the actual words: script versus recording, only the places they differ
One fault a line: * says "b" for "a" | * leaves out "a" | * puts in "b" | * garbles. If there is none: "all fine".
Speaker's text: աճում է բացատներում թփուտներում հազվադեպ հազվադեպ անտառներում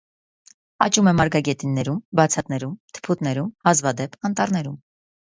* puts in "մարգագետիններում"
* leaves out "հազվադեպ"